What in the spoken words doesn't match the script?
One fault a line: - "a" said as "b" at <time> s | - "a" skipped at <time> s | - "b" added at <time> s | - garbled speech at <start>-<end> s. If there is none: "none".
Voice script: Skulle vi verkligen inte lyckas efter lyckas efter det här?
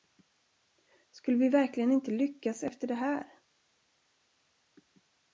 - "lyckas efter" skipped at 2.9 s